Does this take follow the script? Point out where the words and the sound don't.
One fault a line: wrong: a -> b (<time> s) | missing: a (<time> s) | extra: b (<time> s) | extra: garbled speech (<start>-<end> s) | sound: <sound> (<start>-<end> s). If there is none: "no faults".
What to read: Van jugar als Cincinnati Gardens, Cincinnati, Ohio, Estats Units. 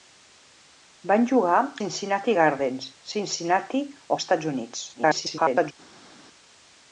missing: als (1.6 s)
missing: Ohio (3.8 s)
extra: garbled speech (4.9-5.7 s)